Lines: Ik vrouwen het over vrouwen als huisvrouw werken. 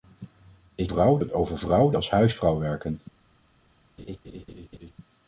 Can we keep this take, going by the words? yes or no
yes